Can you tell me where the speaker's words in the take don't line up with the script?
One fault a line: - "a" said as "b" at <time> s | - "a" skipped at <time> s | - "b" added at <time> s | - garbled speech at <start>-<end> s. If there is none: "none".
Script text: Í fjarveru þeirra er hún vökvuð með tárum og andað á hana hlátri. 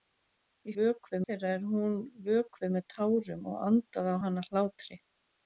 - "fjarveru" said as "vökvuð" at 0.8 s